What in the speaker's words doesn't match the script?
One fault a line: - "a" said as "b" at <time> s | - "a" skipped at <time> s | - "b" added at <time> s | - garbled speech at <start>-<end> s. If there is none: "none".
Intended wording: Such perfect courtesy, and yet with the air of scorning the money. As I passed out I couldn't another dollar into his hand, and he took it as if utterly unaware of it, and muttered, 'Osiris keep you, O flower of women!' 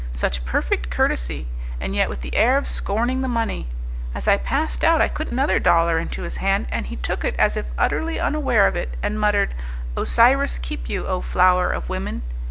none